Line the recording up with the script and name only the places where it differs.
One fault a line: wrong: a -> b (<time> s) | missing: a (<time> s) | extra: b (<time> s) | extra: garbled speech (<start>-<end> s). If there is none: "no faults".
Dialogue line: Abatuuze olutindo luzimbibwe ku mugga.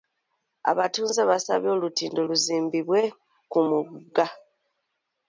extra: baasabye (1.3 s)